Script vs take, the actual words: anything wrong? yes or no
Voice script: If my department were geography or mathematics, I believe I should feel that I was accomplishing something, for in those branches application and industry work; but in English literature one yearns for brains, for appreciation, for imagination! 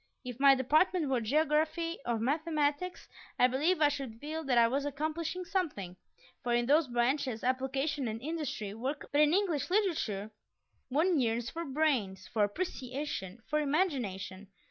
no